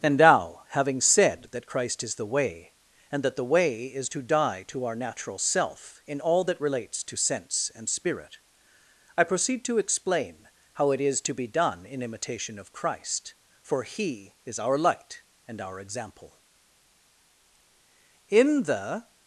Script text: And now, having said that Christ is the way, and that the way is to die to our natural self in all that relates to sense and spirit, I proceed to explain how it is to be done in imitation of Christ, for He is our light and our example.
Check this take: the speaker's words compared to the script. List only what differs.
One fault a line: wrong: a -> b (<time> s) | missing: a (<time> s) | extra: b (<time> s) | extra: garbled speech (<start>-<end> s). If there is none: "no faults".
extra: In the (18.3 s)